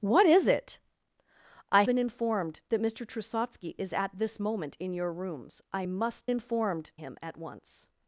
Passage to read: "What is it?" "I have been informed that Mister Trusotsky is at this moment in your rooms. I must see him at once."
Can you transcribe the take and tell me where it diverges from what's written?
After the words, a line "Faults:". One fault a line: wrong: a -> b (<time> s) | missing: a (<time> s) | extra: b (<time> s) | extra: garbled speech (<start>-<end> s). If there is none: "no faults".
"What is it?" "I been informed that Mister Trusotsky is at this moment in your rooms. I must informed him at once."
Faults:
missing: have (1.8 s)
wrong: see -> informed (6.3 s)